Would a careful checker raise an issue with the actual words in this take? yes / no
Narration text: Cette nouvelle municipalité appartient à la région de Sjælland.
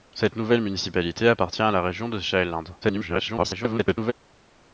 yes